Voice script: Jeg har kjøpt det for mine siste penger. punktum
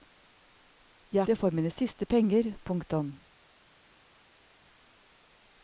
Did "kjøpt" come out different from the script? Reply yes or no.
yes